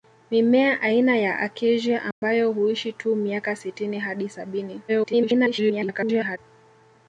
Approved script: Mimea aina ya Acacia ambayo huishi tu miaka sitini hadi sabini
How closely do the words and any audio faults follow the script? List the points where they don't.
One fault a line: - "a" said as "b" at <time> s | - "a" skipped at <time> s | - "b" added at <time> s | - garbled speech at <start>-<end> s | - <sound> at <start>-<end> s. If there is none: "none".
- dropout at 2.1-2.2 s
- garbled speech at 4.9-6.4 s